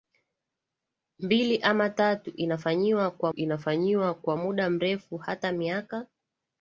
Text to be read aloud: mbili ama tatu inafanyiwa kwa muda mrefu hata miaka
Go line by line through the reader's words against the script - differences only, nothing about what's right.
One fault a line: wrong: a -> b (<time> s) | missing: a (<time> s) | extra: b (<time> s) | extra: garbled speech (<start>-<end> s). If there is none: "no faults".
extra: inafanyiwa kwa (3.3 s)